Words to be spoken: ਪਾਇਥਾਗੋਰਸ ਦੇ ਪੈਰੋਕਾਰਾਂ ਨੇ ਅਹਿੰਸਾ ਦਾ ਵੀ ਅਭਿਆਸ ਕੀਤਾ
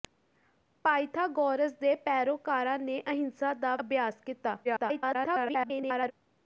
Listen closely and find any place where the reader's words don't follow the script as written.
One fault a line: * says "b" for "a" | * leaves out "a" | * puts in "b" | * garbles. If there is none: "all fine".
* leaves out "ਵੀ"
* garbles